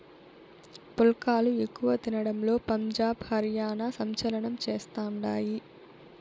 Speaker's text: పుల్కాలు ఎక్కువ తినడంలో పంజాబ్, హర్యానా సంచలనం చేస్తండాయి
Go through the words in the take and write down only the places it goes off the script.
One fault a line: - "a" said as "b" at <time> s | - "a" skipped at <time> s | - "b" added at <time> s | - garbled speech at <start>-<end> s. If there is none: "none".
none